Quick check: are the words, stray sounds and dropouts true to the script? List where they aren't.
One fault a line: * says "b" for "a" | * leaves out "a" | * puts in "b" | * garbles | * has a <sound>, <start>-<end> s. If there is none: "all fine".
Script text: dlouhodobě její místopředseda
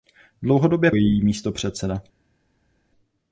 all fine